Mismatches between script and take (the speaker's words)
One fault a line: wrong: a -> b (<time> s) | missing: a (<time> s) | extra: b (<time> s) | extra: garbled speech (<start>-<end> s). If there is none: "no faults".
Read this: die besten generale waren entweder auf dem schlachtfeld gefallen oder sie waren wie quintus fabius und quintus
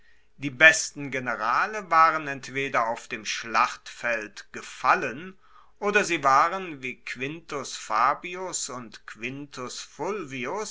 no faults